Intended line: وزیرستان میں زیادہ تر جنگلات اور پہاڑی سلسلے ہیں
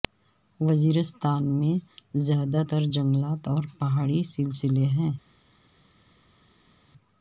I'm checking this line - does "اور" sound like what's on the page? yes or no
yes